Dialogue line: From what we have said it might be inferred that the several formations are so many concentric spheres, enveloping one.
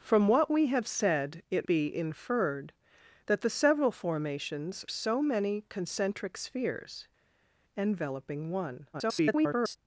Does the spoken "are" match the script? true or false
false